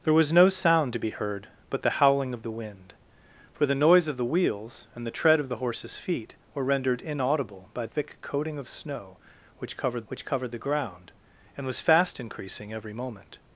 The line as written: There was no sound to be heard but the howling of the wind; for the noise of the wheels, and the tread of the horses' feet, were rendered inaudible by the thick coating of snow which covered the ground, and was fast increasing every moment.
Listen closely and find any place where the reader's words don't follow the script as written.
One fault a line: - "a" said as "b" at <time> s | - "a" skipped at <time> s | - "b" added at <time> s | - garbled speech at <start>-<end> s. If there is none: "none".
- "the" skipped at 7.8 s
- "which covered" added at 10.1 s